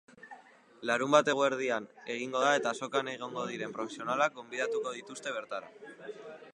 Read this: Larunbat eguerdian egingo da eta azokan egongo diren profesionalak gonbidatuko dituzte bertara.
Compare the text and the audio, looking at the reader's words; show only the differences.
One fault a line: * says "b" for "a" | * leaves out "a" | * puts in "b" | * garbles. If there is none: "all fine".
all fine